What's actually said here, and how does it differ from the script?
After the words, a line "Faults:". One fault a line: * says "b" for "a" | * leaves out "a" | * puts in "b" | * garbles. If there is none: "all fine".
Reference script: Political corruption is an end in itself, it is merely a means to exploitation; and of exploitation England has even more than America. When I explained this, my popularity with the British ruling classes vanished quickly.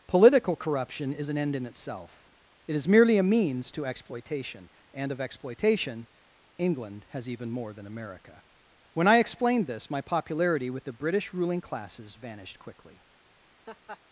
Political corruption is an end in itself, it is merely a means to exploitation; and of exploitation England has even more than America. When I explained this, my popularity with the British ruling classes vanished quickly.
Faults:
all fine